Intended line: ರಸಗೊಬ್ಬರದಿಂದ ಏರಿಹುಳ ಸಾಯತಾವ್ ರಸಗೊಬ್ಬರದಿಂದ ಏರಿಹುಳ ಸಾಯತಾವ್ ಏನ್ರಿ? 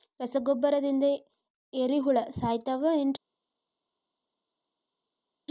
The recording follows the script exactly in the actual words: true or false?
false